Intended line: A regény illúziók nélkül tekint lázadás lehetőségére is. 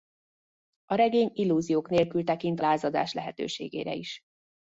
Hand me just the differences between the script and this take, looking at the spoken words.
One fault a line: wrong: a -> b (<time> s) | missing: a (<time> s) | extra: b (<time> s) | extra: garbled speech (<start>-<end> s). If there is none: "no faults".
no faults